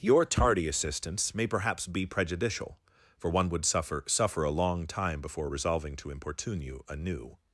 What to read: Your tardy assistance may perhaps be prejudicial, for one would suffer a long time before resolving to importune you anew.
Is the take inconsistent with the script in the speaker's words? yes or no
yes